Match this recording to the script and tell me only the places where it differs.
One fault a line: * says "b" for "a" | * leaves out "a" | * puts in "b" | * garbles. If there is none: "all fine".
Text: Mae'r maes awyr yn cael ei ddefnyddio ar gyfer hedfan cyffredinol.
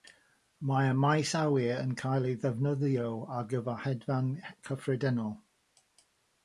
all fine